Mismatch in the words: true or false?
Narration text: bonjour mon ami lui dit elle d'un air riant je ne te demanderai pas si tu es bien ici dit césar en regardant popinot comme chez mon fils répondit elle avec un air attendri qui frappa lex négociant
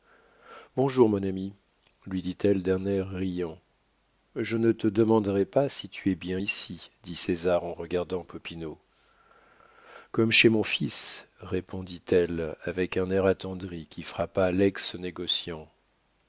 false